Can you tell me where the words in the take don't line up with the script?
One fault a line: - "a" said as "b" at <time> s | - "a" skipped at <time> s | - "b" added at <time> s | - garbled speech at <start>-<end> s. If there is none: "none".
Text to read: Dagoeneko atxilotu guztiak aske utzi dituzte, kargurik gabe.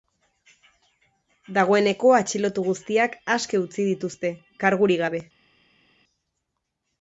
none